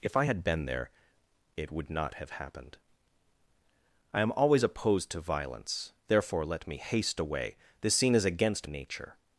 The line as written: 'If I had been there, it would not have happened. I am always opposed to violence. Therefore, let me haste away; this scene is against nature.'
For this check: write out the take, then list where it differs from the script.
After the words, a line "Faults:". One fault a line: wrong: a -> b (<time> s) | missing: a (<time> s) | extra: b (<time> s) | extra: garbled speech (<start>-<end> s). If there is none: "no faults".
'If I had been there, it would not have happened. I am always opposed to violence. Therefore, let me haste away; this scene is against nature.'
Faults:
no faults